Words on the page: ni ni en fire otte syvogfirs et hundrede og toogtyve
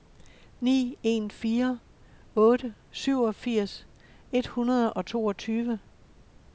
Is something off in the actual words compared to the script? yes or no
yes